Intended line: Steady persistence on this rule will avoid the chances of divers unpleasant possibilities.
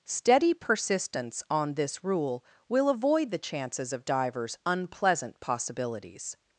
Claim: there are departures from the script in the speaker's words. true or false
false